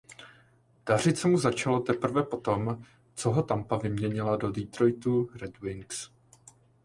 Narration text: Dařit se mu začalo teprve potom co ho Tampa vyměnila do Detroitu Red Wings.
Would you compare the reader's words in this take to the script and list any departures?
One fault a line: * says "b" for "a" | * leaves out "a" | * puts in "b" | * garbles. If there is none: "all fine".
all fine